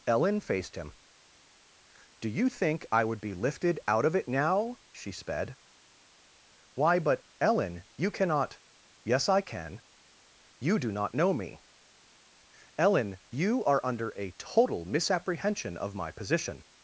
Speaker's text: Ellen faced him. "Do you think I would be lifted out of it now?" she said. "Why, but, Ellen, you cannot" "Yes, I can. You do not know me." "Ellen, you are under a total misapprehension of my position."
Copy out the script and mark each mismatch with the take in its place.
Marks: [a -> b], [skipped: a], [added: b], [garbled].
Ellen faced him. "Do you think I would be lifted out of it now?" she [said. -> sped] "Why, but, Ellen, you cannot" "Yes, I can. You do not know me." "Ellen, you are under a total misapprehension of my position."